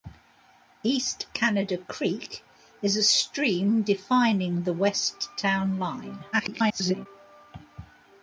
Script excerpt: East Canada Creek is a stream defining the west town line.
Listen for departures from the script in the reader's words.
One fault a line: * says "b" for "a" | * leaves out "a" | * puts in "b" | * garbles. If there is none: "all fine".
* garbles